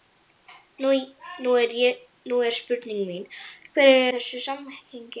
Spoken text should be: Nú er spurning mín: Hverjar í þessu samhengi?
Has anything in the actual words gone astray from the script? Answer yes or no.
no